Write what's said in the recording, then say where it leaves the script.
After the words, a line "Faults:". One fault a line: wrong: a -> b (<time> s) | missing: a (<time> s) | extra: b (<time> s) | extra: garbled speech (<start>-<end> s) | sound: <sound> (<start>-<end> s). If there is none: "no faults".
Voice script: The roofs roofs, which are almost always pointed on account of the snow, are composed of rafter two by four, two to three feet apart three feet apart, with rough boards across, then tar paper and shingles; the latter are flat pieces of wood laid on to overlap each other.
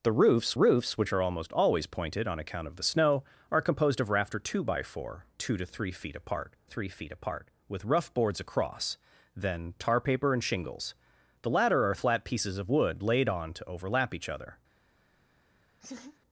The roofs roofs, which are almost always pointed on account of the snow, are composed of rafter two by four, two to three feet apart three feet apart, with rough boards across, then tar paper and shingles; the latter are flat pieces of wood laid on to overlap each other.
Faults:
sound: laugh (15.8-16.2 s)